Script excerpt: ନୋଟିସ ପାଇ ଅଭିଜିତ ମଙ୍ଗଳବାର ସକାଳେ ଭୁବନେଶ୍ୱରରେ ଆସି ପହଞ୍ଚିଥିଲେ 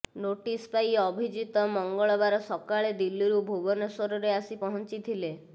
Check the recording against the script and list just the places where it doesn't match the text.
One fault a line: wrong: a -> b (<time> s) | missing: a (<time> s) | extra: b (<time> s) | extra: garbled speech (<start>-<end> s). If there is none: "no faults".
extra: ଦିଲ୍ଲୀରୁ (3.0 s)